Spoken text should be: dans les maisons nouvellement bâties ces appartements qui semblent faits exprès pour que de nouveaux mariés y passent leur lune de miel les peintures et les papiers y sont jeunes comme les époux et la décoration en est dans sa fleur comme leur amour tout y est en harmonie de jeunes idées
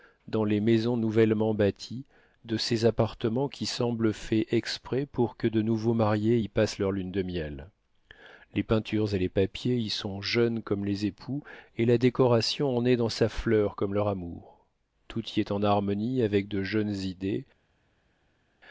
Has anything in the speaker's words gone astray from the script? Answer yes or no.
yes